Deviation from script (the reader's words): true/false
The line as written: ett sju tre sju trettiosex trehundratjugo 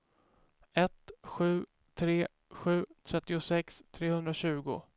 false